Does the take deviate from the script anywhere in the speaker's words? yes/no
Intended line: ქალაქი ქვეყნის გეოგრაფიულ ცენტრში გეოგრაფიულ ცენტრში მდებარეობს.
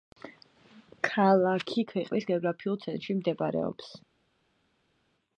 yes